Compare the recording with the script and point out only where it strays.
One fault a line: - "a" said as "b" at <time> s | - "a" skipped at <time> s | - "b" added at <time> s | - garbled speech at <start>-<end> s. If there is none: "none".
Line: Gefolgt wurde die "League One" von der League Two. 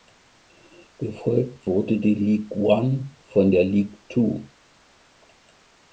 none